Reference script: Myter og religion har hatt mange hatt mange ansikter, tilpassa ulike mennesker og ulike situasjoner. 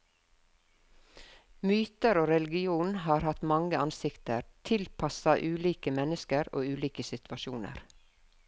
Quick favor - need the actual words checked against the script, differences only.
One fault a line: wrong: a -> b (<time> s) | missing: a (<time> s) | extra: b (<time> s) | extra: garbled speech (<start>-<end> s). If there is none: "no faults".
missing: hatt mange (3.8 s)